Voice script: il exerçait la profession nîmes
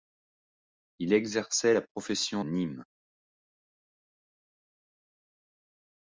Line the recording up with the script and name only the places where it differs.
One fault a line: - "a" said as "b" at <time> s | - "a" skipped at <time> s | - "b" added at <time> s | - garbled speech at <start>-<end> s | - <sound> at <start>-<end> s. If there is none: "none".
none